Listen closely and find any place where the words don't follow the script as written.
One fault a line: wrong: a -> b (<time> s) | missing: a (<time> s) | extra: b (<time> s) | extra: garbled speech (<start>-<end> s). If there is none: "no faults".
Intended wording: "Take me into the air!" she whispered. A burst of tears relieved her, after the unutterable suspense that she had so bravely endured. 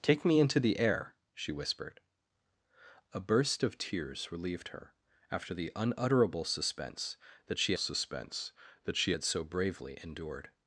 extra: suspense that she (7.8 s)